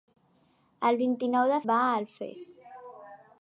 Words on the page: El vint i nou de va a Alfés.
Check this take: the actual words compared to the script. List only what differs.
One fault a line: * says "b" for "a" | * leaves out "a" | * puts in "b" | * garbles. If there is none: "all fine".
all fine